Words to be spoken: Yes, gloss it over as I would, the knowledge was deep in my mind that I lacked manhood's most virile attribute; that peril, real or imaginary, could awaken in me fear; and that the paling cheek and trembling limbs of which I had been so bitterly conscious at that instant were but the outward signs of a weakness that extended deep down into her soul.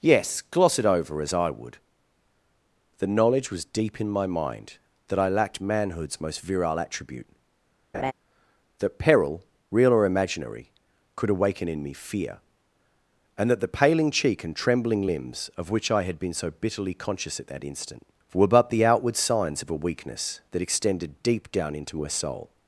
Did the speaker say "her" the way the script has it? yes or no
yes